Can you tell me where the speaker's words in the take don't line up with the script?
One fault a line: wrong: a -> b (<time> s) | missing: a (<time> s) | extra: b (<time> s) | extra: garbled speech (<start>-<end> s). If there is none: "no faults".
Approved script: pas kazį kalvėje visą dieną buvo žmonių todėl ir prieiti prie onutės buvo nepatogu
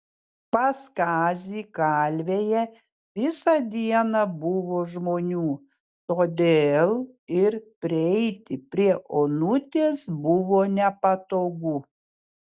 no faults